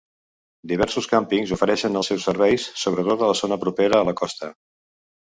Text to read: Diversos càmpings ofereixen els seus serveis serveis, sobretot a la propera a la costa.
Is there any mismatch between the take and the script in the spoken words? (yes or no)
yes